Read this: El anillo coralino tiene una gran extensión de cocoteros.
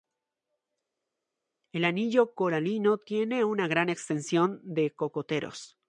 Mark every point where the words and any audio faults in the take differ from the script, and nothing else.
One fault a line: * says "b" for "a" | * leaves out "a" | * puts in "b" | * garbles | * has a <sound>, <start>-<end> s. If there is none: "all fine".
all fine